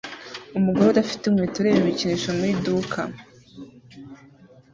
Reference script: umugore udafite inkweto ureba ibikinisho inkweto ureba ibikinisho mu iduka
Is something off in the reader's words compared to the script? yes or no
yes